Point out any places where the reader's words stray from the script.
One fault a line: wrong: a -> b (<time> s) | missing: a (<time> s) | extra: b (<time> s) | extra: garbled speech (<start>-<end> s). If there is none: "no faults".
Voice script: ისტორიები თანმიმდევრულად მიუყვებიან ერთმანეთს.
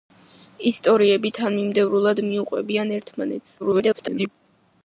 extra: garbled speech (3.6-4.3 s)